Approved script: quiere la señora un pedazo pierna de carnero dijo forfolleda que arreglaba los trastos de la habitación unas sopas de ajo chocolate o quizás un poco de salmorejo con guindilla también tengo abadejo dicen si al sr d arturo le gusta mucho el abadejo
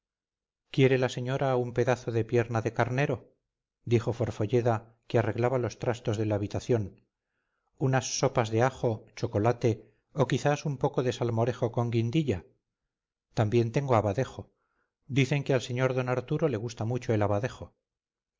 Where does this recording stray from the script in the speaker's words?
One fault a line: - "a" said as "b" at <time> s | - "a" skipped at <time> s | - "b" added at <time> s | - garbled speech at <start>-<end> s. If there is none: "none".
- "de" added at 2.1 s
- "si" said as "que" at 15.4 s